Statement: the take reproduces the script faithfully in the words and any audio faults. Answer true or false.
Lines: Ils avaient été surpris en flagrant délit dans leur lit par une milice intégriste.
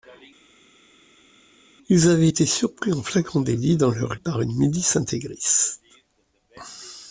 false